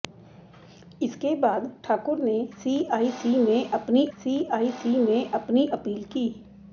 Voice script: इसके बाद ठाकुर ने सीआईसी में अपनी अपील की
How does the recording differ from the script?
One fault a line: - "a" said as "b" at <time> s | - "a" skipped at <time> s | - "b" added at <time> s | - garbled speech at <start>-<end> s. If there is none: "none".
- "सीआईसी में अपनी" added at 4.1 s